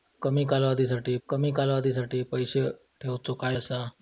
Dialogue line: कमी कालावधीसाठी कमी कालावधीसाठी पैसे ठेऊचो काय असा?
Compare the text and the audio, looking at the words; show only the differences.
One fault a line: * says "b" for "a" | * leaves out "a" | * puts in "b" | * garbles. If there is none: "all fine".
all fine